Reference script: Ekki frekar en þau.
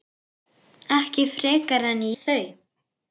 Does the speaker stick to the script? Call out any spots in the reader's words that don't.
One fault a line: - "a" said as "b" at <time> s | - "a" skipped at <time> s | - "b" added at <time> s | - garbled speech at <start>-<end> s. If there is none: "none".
none